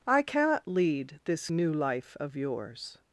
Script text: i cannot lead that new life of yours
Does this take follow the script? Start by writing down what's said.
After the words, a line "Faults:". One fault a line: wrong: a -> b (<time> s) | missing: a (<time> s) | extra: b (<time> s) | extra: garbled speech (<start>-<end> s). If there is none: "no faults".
i cannot lead this new life of yours
Faults:
wrong: that -> this (1.2 s)